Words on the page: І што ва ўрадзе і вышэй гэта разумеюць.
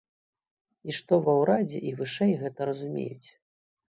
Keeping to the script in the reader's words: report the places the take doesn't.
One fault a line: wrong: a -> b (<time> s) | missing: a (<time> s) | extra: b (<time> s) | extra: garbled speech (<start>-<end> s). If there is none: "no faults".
no faults